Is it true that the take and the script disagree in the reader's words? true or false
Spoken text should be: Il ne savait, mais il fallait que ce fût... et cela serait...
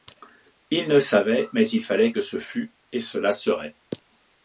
false